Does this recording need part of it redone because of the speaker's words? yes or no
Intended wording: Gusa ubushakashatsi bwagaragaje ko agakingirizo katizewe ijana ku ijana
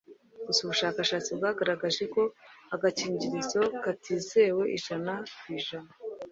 no